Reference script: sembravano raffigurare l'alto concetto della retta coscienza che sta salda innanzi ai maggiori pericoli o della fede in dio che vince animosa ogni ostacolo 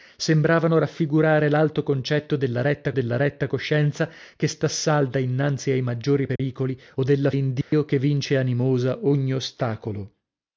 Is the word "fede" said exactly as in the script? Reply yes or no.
no